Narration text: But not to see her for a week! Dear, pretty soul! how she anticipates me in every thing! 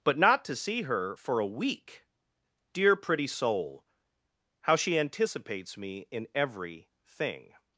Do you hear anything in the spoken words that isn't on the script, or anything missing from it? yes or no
no